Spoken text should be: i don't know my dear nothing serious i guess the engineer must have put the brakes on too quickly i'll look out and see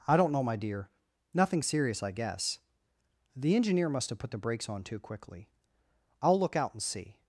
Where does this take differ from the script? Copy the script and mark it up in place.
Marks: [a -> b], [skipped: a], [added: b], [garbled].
i don't know my dear nothing serious i guess the engineer must have put the brakes on too quickly i'll look out and see